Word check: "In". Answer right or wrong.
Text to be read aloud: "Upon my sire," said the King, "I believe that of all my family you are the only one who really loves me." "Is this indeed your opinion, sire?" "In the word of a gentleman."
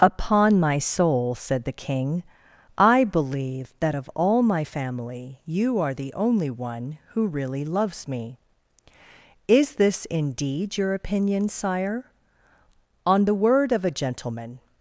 wrong